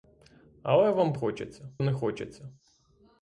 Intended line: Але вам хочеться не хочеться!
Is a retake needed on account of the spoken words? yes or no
no